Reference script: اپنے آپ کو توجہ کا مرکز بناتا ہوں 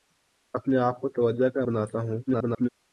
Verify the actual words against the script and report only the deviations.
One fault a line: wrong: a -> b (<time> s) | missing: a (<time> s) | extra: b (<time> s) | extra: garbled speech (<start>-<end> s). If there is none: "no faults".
missing: مرکز (1.6 s)
extra: garbled speech (2.3-2.7 s)